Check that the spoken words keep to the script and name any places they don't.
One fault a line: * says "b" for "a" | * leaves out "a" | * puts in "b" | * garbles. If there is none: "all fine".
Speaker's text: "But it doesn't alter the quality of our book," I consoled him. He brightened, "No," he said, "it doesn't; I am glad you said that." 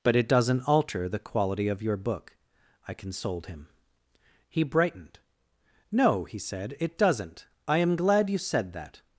* says "your" for "our"